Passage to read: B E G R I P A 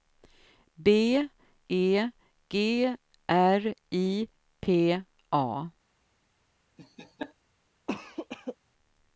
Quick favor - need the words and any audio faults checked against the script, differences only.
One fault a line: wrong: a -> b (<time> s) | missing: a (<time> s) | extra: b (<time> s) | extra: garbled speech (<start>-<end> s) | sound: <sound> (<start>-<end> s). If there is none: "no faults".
sound: laugh (6.8-7.3 s)
sound: cough (7.9-8.6 s)